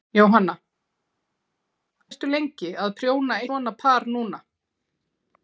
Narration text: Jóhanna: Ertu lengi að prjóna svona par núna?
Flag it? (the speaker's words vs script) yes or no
no